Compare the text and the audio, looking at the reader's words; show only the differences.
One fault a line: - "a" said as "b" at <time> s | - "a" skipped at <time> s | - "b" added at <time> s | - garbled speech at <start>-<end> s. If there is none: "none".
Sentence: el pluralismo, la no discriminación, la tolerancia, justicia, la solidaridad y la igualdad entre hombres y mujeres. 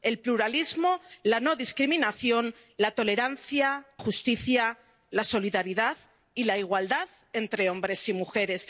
none